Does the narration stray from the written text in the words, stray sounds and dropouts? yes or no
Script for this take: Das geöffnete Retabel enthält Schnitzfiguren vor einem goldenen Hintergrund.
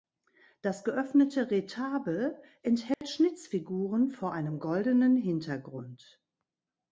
yes